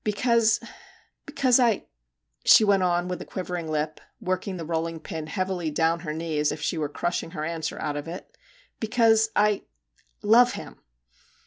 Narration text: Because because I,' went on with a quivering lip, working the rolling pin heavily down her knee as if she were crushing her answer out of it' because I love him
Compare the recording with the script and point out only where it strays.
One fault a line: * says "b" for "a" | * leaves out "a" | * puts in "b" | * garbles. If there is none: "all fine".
* puts in "she"